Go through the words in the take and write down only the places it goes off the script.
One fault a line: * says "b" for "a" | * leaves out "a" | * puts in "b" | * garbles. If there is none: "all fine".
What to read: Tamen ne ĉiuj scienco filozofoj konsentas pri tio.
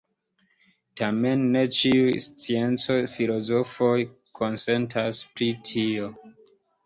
all fine